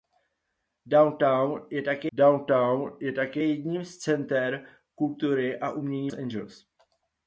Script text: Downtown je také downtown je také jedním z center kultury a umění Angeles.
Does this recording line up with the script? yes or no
yes